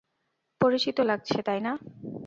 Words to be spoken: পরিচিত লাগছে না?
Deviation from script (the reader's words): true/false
true